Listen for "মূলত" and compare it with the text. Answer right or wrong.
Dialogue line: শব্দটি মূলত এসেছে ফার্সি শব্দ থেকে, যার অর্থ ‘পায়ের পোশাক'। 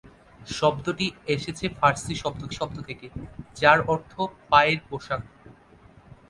wrong